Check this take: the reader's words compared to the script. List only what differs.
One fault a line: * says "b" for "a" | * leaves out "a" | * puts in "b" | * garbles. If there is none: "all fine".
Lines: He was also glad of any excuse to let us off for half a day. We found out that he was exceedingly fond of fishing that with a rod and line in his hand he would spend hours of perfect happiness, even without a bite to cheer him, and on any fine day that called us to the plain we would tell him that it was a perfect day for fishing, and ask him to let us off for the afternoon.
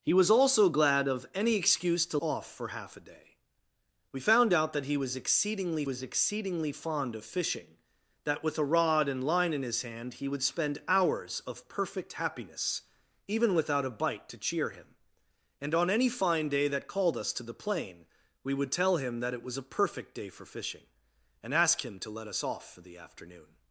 * leaves out "let us"
* puts in "was exceedingly"